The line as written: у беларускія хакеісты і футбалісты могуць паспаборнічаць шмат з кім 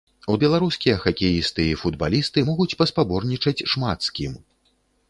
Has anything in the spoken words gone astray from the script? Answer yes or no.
no